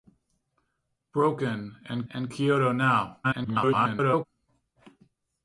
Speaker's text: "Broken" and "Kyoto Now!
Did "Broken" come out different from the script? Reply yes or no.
no